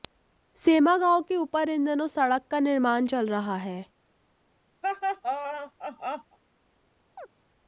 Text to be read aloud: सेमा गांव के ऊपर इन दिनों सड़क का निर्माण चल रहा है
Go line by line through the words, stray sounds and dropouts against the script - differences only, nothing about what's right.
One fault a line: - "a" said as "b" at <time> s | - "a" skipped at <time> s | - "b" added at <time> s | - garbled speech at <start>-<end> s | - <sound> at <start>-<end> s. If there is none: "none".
- laugh at 4.8-6.4 s
- chirp at 7.1-7.3 s